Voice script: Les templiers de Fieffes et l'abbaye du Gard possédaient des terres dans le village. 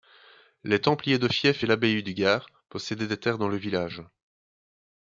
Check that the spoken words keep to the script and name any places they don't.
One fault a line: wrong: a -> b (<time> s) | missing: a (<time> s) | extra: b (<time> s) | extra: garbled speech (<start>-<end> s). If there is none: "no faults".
no faults